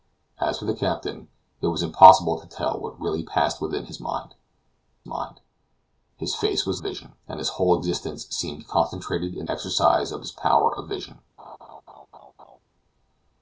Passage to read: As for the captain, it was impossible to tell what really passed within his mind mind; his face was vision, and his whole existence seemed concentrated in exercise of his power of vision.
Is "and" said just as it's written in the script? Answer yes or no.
yes